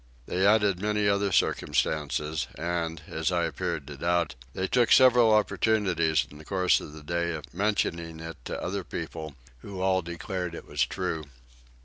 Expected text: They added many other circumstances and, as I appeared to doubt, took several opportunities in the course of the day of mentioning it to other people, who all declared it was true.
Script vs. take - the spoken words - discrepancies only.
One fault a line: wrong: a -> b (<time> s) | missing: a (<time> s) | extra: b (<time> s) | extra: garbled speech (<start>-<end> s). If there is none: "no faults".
extra: they (4.5 s)